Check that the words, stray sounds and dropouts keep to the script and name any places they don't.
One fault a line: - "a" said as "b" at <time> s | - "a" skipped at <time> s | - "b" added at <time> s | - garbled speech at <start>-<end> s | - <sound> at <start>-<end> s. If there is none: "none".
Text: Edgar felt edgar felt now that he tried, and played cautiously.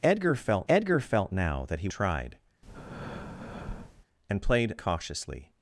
- breath at 2.6-4.1 s